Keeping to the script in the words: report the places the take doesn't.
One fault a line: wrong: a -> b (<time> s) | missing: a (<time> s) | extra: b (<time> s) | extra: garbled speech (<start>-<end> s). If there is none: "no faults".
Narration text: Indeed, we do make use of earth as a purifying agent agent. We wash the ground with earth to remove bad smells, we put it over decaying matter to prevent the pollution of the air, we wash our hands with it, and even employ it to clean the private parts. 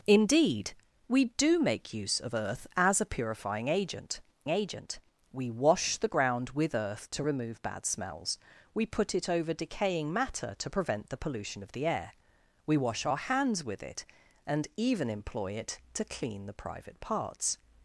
no faults